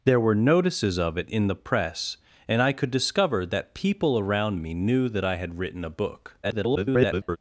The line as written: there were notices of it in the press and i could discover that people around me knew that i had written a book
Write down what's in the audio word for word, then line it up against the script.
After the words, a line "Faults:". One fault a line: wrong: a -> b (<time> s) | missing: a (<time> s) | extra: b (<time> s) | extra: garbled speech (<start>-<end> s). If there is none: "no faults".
there were notices of it in the press and i could discover that people around me knew that i had written a book [garbled]
Faults:
extra: garbled speech (6.4-7.4 s)